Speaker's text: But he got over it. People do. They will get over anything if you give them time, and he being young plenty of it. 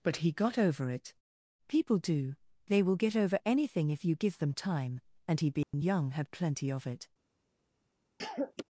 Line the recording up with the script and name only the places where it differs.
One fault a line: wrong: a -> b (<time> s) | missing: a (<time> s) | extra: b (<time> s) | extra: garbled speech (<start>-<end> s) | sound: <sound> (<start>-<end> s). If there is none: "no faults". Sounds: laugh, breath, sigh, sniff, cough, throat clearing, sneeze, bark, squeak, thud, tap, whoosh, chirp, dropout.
sound: dropout (5.6-5.7 s)
extra: had (6.1 s)
sound: cough (8.2-8.6 s)